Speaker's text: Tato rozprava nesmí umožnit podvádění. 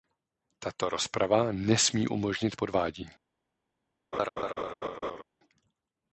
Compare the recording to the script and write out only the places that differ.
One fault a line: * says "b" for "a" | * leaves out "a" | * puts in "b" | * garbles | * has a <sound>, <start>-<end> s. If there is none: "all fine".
* has a laugh, 4.1-5.2 s